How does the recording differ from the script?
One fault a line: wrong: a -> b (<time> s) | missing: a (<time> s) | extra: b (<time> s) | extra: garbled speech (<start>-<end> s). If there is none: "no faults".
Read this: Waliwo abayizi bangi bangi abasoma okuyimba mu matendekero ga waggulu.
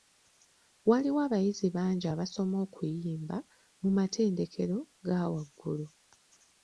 missing: bangi (2.0 s)